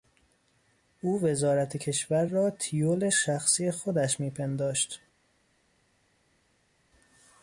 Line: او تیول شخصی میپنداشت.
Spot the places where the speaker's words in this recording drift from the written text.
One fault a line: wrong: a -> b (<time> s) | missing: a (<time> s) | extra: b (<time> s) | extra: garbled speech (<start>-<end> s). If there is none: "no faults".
extra: وزارت کشور را (1.2 s)
extra: خودش (3.7 s)